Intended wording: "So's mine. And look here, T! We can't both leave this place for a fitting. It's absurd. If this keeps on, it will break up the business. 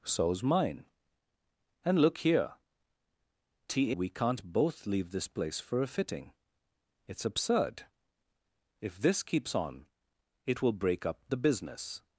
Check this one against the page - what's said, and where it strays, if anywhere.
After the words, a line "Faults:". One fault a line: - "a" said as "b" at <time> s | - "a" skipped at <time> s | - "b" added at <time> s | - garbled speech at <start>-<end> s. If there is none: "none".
"So's mine. And look here, T! We can't both leave this place for a fitting. It's absurd. If this keeps on, it will break up the business.
Faults:
none